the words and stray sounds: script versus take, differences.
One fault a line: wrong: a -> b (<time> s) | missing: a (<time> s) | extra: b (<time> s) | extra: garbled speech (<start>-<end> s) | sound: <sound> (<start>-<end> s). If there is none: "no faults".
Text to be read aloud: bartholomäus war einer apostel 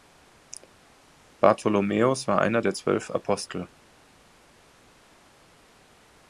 extra: der zwölf (2.6 s)